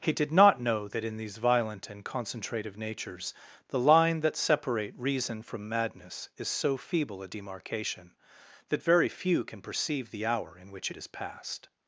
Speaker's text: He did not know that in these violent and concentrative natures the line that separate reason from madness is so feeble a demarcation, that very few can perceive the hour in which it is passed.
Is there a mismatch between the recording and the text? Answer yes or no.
no